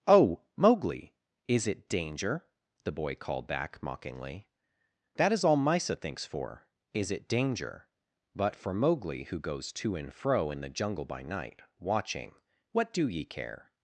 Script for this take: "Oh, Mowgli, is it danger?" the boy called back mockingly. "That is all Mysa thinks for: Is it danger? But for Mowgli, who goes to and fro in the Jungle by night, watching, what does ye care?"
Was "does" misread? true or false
true